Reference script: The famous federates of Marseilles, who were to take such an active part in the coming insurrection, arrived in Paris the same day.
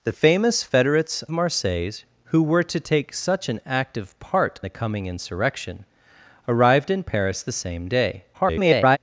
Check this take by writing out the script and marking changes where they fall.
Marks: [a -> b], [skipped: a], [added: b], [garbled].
The famous federates [skipped: of] Marseilles, who were to take such an active part [skipped: in] the coming insurrection, arrived in Paris the same day. [garbled]